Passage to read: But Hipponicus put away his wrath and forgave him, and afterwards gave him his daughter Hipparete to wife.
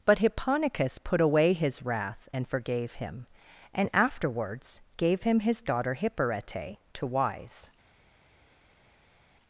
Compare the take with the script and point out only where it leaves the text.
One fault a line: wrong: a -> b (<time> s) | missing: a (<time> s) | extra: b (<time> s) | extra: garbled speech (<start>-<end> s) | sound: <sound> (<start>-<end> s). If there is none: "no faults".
wrong: wife -> wise (7.1 s)